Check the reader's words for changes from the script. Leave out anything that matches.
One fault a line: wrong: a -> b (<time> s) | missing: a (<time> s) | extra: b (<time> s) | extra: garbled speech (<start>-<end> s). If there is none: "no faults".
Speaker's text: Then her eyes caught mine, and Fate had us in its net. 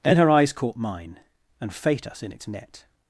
missing: had (2.1 s)